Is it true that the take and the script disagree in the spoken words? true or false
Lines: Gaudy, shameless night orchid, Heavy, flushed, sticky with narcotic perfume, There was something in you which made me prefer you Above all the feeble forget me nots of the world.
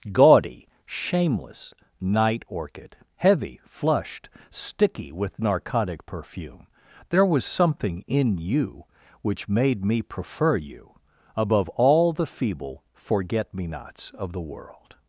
false